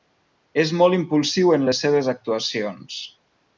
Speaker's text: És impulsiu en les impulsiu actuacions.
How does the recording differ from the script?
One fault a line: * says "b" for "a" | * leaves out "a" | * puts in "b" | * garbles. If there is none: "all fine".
* puts in "molt"
* says "seves" for "impulsiu"